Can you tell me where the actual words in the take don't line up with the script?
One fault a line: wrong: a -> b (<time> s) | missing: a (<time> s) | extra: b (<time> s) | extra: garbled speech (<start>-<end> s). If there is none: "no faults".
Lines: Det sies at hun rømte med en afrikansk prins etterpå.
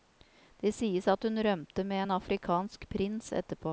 no faults